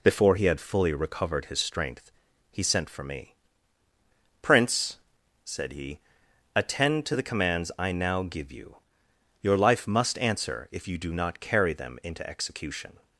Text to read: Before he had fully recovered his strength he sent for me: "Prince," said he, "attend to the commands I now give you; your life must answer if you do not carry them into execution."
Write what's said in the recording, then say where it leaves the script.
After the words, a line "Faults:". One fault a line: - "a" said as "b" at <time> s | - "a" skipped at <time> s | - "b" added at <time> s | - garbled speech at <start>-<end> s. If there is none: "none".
Before he had fully recovered his strength he sent for me: "Prince," said he, "attend to the commands I now give you; your life must answer if you do not carry them into execution."
Faults:
none